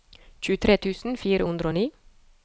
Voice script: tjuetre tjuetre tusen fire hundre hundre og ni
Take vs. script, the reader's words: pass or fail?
fail